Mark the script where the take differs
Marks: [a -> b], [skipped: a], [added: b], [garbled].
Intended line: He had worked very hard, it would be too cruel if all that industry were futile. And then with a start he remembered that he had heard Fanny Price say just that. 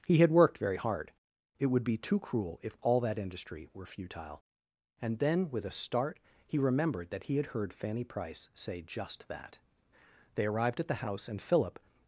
He had worked very hard, it would be too cruel if all that industry were futile. And then with a start he remembered that he had heard Fanny Price say just that. [added: They arrived at the house and Philip]